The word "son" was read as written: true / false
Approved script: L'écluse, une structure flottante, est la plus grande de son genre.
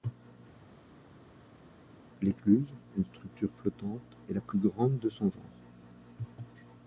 true